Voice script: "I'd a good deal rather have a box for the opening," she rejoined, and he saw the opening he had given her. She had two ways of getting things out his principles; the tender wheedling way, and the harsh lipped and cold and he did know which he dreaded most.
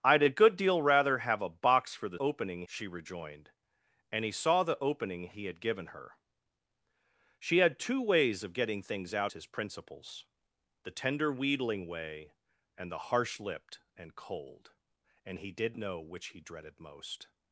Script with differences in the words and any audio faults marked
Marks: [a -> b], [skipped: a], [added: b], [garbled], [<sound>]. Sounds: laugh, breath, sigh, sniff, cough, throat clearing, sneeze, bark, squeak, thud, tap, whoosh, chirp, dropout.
"I'd a good deal rather have a box for the opening," she rejoined, and he saw the opening he had given her. She had two ways of getting things out his principles; the tender wheedling way, and the harsh lipped and cold and he did know which he dreaded most.